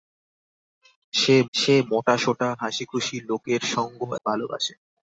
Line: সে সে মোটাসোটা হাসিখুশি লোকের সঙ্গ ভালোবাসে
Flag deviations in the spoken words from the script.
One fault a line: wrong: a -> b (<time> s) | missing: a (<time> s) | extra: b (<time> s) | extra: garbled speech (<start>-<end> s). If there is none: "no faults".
no faults